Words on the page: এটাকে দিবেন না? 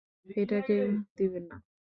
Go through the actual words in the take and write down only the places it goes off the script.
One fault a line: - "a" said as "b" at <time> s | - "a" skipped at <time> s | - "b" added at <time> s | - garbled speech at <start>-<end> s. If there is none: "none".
none